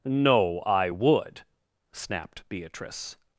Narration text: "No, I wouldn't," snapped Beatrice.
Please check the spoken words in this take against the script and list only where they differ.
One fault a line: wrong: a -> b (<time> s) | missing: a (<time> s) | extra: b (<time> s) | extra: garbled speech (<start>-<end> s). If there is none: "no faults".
wrong: wouldn't -> would (0.9 s)